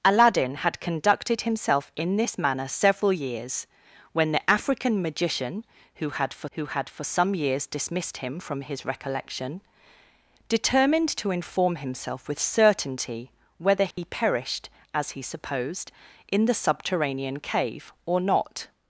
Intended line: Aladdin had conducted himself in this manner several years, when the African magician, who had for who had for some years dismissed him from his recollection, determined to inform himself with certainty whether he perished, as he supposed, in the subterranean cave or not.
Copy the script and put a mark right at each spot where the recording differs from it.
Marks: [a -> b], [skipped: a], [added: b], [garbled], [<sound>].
Aladdin had conducted himself in this manner several years, when the African magician, who had for who had for some years dismissed him from his recollection, determined to inform himself with certainty whether he [dropout] perished, as he supposed, in the subterranean cave or not.